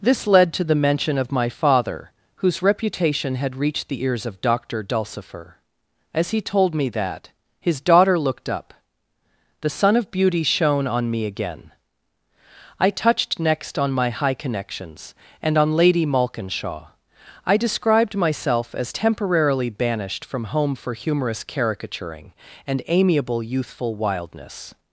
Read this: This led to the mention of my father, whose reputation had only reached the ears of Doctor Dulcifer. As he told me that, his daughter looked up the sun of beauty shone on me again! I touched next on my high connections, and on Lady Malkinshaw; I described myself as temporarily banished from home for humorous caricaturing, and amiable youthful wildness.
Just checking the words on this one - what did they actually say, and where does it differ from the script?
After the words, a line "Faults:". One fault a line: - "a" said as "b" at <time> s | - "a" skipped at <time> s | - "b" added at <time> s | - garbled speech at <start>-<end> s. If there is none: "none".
This led to the mention of my father, whose reputation had reached the ears of Doctor Dulcifer. As he told me that, his daughter looked up the sun of beauty shone on me again! I touched next on my high connections, and on Lady Malkinshaw; I described myself as temporarily banished from home for humorous caricaturing, and amiable youthful wildness.
Faults:
- "only" skipped at 3.5 s